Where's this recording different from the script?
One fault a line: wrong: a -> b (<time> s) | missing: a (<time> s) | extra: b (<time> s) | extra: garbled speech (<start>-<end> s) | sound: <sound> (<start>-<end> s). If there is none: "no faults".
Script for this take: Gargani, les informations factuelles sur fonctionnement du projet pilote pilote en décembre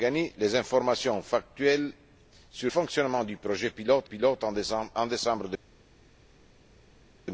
no faults